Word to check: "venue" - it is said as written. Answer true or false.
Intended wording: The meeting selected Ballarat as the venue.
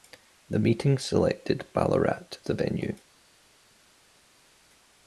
true